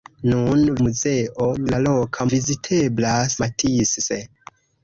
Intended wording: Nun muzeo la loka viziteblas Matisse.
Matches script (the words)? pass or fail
pass